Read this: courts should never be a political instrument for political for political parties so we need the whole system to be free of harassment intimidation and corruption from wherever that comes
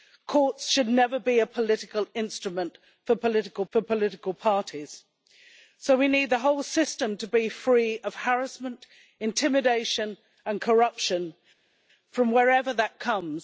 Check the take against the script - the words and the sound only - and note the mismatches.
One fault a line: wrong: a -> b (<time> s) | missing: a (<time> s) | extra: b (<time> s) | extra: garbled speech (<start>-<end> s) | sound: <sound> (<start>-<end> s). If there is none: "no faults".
no faults